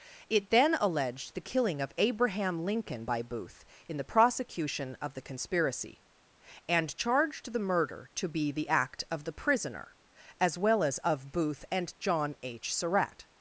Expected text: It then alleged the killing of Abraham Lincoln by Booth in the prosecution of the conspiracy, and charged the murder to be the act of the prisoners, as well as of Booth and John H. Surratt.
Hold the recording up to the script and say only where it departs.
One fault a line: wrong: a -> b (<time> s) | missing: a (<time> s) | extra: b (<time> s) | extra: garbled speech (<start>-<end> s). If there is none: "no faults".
wrong: prisoners -> prisoner (9.3 s)